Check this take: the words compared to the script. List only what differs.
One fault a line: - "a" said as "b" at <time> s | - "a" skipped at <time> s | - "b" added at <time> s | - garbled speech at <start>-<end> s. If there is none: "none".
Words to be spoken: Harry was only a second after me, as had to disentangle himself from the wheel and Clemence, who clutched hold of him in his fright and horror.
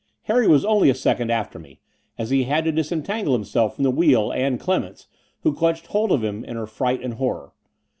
- "he" added at 2.3 s
- "his" said as "her" at 6.5 s